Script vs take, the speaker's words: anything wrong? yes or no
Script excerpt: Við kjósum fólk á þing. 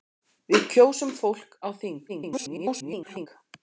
yes